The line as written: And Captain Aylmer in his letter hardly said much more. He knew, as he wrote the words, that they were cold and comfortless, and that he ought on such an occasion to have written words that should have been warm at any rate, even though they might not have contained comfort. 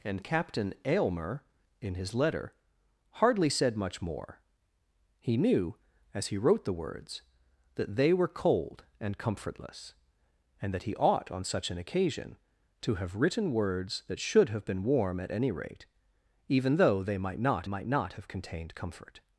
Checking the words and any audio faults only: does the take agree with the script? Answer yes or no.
no